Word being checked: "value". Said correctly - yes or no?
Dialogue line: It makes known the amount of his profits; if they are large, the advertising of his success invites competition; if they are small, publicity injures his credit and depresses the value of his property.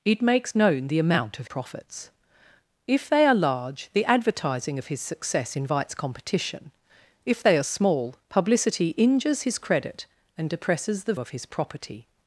no